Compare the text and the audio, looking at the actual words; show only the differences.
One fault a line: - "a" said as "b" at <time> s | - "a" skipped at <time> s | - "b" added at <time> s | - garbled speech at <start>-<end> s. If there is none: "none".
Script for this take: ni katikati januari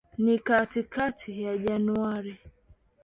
- "ya" added at 1.4 s